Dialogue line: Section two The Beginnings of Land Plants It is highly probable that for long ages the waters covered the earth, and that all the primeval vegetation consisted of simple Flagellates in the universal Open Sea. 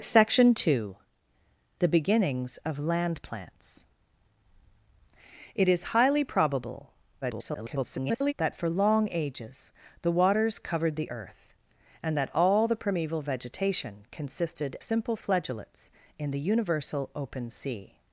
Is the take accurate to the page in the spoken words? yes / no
no